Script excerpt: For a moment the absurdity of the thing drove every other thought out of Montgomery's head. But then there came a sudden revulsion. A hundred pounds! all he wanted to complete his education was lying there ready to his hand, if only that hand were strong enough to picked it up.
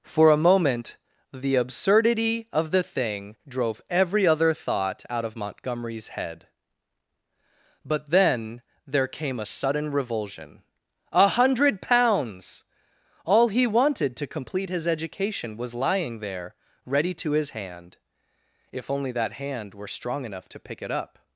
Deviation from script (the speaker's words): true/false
true